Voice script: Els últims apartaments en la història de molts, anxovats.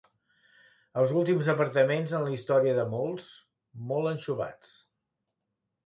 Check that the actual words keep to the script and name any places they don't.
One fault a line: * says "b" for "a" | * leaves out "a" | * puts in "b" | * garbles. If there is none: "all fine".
* puts in "molt"